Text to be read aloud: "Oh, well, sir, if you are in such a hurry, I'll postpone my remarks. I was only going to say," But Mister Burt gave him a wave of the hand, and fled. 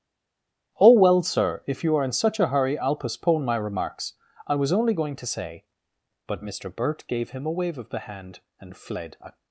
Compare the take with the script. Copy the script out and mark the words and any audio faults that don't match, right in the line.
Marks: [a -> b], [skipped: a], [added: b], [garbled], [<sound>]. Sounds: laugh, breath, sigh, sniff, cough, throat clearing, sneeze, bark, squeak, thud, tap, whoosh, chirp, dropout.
"Oh, well, sir, if you are in such a hurry, I'll postpone my remarks. I was only going to say," But Mister Burt gave him a wave of the hand, and fled. [added: A]